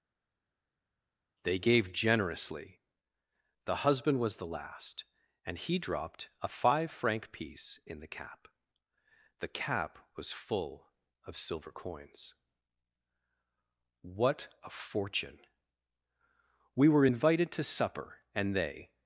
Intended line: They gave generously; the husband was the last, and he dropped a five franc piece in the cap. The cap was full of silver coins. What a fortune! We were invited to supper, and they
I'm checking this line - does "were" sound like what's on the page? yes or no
yes